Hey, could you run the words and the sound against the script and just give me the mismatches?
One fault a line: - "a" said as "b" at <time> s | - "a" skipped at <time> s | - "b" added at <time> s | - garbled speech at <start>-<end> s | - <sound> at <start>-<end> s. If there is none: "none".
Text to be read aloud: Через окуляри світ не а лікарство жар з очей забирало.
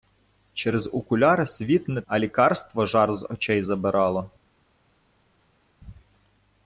none